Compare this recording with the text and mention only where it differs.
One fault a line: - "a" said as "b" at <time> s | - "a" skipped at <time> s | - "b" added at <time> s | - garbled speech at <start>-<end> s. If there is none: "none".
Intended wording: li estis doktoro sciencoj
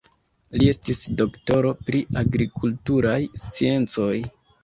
- "pri agrikulturaj" added at 1.9 s